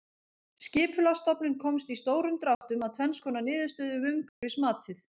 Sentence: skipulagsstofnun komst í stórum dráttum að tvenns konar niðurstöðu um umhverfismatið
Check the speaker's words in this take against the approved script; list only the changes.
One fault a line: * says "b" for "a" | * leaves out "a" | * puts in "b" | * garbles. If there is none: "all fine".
all fine